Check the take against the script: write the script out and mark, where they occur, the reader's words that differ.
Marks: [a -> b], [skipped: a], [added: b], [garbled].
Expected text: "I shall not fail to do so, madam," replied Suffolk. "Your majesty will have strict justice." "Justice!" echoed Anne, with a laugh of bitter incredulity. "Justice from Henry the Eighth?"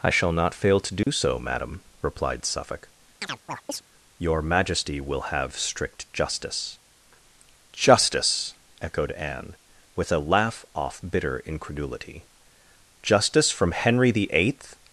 "I shall not fail to do so, madam," replied Suffolk. "Your majesty will have strict justice." "Justice!" echoed Anne, with a laugh [of -> off] bitter incredulity. "Justice from Henry the Eighth?"